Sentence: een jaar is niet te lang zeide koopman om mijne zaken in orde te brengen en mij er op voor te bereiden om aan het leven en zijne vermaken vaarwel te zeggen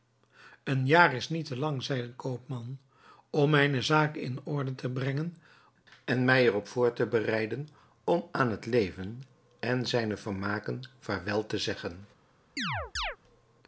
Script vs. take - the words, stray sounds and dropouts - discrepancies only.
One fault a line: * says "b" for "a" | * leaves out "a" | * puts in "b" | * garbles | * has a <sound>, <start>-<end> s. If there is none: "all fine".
* has a chirp, 12.6-13.2 s